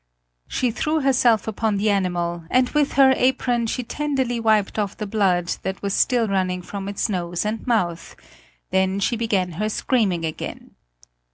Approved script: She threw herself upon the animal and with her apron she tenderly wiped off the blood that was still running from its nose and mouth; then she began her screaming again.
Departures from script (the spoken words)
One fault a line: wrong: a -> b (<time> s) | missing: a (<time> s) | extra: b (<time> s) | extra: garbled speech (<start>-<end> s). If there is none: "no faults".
no faults